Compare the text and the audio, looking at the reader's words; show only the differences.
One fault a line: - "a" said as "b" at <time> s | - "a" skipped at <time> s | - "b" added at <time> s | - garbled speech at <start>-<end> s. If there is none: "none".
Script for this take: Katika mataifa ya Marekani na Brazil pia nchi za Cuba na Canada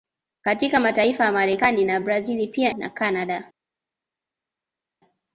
- "nchi za Cuba" skipped at 2.7 s